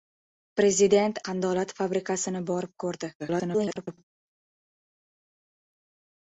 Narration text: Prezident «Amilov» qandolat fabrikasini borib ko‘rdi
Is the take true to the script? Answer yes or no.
no